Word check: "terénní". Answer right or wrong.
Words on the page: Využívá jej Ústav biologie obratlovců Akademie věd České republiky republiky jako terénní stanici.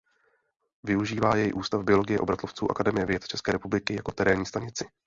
right